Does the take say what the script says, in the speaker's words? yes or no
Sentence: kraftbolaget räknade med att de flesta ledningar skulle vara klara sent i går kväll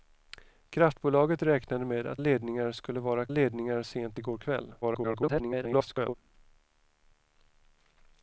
no